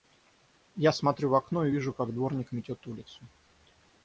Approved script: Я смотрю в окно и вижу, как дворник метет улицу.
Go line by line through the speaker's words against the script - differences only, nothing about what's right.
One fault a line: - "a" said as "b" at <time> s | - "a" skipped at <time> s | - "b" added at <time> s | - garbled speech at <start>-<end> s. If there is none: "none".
none